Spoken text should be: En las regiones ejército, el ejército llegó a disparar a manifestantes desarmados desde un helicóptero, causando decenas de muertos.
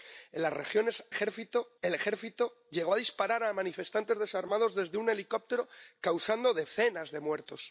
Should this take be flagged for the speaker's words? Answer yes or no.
no